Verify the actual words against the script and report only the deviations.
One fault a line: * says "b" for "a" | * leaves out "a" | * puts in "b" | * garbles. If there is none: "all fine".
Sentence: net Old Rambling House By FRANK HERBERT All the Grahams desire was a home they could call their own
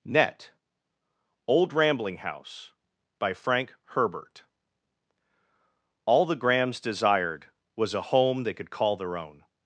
* says "desired" for "desire"